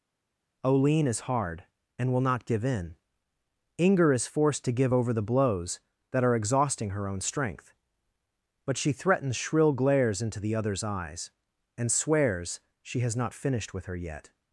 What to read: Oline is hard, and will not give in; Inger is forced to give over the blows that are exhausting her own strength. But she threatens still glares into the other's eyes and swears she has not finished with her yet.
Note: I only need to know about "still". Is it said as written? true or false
false